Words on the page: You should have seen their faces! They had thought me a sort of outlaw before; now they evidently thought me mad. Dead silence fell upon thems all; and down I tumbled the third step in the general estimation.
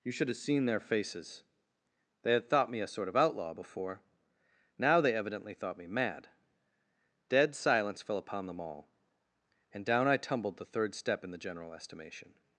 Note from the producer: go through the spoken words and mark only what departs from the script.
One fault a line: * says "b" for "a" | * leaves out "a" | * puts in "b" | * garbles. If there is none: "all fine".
* says "them" for "thems"